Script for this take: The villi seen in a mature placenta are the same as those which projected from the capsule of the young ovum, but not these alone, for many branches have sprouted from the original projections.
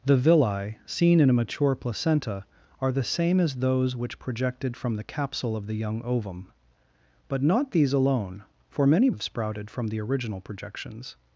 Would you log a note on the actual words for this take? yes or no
yes